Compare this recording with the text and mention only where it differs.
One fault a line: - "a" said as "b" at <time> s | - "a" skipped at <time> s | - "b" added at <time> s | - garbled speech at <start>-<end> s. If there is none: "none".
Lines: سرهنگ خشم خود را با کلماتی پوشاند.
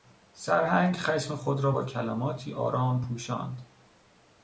- "آرام" added at 2.5 s